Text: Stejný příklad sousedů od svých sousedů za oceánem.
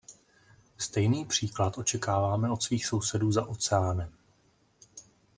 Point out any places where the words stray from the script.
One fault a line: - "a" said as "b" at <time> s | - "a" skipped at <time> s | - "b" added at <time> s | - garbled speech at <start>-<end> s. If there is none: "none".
- "sousedů" said as "očekáváme" at 1.8 s